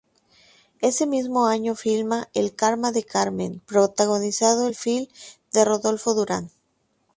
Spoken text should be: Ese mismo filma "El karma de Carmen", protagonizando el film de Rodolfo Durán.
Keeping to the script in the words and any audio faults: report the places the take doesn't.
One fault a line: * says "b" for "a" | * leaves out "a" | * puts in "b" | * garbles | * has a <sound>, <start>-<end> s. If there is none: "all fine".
* puts in "año"